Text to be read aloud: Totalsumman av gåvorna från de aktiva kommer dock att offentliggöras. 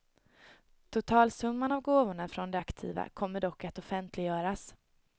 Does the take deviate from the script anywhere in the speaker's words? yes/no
no